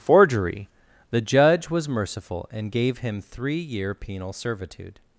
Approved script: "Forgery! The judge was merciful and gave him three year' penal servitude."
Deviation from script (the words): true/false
false